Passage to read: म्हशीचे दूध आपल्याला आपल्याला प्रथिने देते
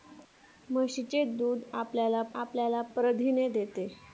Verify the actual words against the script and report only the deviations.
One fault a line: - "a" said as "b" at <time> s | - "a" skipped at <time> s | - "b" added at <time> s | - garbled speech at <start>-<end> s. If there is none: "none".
none